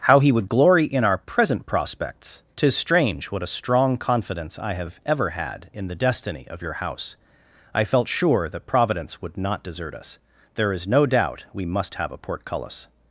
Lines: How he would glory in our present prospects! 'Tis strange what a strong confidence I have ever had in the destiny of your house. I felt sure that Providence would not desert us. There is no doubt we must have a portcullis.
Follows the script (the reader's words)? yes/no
yes